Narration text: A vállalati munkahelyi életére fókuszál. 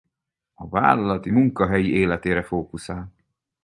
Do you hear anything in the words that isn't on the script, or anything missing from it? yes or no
no